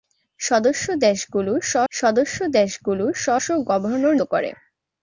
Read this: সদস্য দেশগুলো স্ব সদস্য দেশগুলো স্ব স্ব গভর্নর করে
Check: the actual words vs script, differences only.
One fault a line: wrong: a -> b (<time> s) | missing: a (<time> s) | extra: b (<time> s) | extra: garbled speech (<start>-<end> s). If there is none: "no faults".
no faults